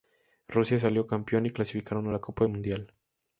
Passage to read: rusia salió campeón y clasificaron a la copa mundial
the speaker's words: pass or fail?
pass